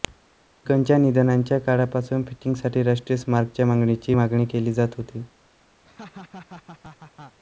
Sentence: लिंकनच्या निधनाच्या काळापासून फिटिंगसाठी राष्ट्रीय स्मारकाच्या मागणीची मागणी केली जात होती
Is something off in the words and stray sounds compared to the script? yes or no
yes